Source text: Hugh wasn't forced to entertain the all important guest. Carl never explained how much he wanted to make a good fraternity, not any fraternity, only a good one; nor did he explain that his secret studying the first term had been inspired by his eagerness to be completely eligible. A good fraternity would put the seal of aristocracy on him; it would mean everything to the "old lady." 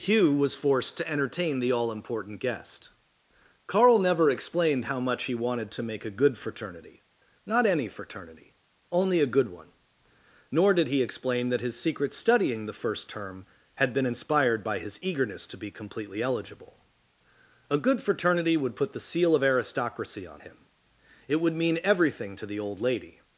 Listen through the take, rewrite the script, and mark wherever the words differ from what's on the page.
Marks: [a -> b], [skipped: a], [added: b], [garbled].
Hugh [wasn't -> was] forced to entertain the all important guest. Carl never explained how much he wanted to make a good fraternity, not any fraternity, only a good one; nor did he explain that his secret studying the first term had been inspired by his eagerness to be completely eligible. A good fraternity would put the seal of aristocracy on him; it would mean everything to the "old lady."